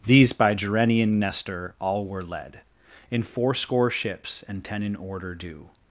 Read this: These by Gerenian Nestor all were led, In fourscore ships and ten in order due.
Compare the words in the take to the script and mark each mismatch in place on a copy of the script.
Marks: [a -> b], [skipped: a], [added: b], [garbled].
These by Gerenian Nestor all were led, In fourscore ships and ten in order due.